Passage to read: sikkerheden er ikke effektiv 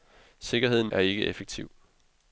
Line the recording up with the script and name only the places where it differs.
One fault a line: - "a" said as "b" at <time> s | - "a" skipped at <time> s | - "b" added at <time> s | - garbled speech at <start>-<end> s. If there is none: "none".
none